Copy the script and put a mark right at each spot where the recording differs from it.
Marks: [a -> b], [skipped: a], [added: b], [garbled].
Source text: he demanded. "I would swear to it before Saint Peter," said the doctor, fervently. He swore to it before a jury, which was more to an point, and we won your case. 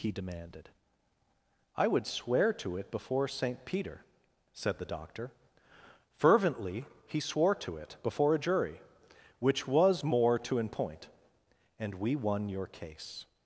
he demanded. "I would swear to it before Saint Peter," said the doctor, fervently. He swore to it before a jury, which was more to an point, and we won your case.